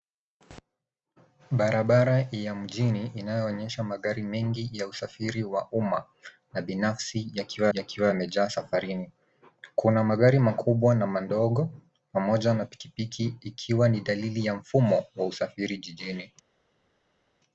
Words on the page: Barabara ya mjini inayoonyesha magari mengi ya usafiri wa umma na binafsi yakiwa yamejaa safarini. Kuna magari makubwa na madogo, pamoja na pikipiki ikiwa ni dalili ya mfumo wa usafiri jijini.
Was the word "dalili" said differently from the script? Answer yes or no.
no